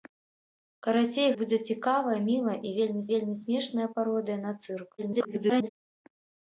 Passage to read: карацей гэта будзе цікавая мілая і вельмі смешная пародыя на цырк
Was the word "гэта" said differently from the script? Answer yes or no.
yes